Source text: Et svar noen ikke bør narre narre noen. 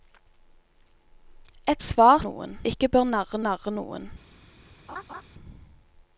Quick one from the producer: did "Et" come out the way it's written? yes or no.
yes